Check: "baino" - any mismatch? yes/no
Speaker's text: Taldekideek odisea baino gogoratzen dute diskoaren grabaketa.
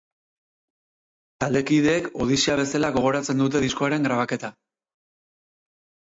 yes